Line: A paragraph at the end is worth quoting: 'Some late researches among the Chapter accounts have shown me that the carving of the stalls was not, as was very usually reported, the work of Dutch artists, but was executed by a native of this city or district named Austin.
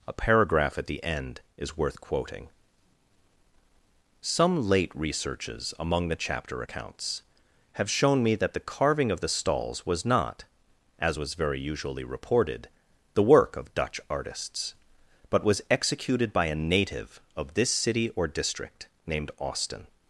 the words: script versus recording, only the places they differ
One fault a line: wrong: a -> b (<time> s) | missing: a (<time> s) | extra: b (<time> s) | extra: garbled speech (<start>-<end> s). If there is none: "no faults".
no faults